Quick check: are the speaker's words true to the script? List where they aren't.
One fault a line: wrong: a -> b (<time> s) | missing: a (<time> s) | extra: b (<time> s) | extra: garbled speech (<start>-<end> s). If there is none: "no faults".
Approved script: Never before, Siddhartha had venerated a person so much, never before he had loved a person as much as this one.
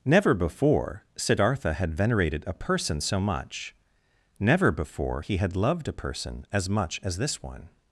no faults